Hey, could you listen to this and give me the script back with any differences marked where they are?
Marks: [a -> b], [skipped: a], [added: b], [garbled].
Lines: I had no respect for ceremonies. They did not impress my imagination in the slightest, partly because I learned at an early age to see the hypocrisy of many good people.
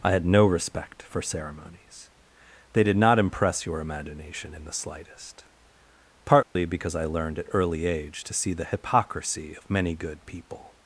I had no respect for ceremonies. They did not impress [my -> your] imagination in the slightest, partly because I learned at [skipped: an] early age to see the hypocrisy of many good people.